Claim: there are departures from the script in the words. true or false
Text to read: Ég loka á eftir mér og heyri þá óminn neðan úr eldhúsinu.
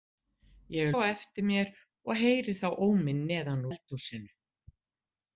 true